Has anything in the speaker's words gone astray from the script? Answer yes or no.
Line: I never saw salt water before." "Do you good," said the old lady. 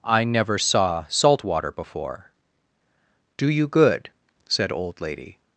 yes